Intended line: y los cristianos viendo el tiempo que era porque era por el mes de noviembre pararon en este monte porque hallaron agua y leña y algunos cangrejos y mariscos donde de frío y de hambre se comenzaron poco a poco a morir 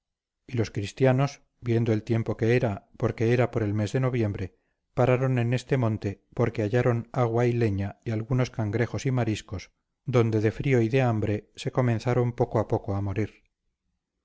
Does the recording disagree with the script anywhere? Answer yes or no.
no